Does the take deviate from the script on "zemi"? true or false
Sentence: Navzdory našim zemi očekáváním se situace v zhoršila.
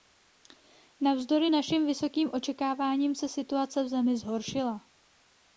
true